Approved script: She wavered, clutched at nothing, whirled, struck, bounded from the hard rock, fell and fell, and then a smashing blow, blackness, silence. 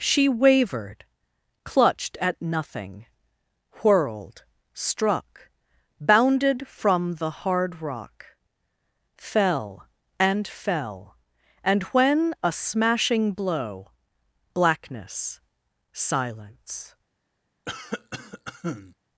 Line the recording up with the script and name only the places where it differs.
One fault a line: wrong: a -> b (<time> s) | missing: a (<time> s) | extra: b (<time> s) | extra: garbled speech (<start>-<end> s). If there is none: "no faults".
wrong: then -> when (11.9 s)